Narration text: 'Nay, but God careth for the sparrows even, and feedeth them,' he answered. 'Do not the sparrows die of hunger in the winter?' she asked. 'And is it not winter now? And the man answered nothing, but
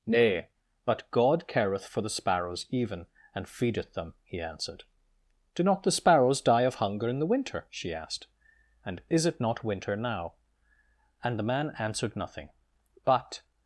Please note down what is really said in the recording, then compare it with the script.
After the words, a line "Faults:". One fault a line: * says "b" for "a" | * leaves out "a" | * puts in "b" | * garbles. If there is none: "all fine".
'Nay, but God careth for the sparrows even, and feedeth them,' he answered. 'Do not the sparrows die of hunger in the winter?' she asked. 'And is it not winter now? And the man answered nothing, but
Faults:
all fine